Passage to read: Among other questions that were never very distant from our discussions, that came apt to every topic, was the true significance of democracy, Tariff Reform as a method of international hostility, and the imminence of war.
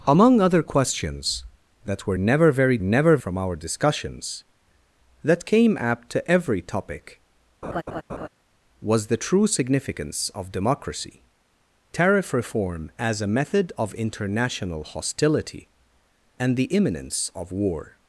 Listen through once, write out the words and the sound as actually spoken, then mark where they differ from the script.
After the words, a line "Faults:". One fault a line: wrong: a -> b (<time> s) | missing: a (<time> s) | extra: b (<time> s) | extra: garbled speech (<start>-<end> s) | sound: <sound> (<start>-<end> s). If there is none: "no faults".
Among other questions that were never very never from our discussions, that came apt to every topic, was the true significance of democracy, Tariff Reform as a method of international hostility, and the imminence of war.
Faults:
wrong: distant -> never (2.8 s)
sound: laugh (7.6-8.3 s)